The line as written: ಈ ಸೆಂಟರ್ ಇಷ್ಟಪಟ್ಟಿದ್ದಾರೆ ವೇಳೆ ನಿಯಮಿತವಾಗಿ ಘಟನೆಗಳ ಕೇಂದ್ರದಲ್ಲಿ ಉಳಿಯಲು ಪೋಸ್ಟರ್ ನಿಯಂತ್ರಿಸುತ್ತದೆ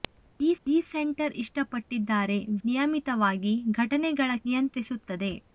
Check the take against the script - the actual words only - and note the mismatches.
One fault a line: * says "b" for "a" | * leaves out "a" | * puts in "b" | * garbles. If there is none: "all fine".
* puts in "ಈ"
* leaves out "ವೇಳೆ"
* leaves out "ಕೇಂದ್ರದಲ್ಲಿ ಉಳಿಯಲು ಪೋಸ್ಟರ್"